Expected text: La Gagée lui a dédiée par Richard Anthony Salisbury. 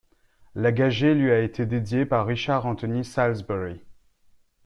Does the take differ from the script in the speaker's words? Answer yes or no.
yes